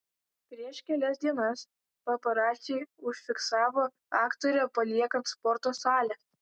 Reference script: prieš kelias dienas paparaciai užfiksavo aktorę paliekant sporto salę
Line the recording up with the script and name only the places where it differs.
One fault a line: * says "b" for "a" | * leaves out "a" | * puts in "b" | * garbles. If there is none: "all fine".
all fine